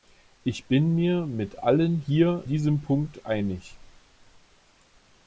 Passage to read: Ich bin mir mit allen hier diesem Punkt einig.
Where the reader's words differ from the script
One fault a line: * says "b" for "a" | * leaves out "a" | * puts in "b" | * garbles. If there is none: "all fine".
all fine